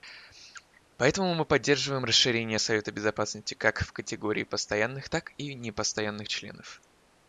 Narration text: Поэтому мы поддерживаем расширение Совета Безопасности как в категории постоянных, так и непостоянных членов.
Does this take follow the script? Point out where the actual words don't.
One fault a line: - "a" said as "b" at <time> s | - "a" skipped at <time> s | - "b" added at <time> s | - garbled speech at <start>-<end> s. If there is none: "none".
none